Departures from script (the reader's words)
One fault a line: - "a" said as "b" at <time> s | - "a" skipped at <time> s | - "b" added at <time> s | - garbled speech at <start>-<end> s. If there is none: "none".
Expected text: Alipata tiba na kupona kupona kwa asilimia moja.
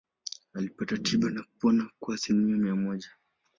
- "kupona" skipped at 1.9 s
- "mia" added at 2.6 s